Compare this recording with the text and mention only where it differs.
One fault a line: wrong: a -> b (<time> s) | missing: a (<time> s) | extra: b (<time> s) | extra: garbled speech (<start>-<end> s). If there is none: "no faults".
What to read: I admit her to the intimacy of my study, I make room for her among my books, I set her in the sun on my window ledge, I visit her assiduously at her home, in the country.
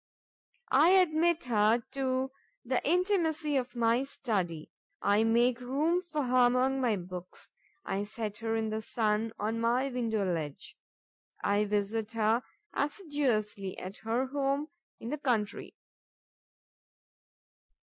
no faults